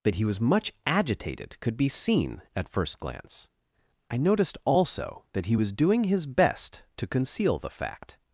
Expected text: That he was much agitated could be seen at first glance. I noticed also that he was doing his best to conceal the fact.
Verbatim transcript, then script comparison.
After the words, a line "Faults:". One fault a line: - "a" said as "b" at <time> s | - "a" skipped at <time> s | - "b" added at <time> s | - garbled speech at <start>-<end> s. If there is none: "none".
That he was much agitated could be seen at first glance. I noticed also that he was doing his best to conceal the fact.
Faults:
none